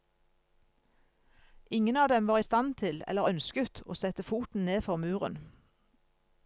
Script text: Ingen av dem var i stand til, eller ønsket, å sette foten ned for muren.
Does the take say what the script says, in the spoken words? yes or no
yes